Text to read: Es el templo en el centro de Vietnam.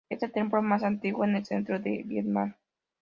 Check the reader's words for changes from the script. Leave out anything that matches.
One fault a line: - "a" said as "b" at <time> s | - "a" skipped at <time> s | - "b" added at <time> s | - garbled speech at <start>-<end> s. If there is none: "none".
- "más antiguo" added at 0.6 s